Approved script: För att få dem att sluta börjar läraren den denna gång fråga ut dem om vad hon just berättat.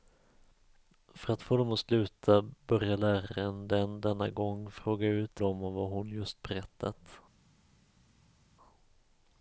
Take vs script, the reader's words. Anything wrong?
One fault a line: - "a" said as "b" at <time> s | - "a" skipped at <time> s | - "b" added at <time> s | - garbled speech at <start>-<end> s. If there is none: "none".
none